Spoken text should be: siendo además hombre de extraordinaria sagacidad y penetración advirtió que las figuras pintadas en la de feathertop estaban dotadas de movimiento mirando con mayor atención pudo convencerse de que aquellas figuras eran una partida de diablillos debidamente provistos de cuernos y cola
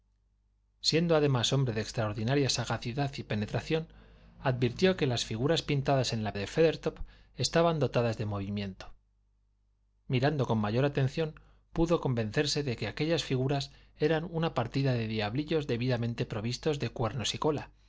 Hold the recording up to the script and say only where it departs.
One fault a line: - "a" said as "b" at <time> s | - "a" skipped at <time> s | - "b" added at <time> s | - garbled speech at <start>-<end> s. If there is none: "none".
none